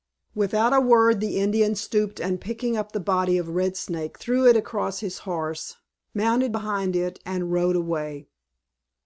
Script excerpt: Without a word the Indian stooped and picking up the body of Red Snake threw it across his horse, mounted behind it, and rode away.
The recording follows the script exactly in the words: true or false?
true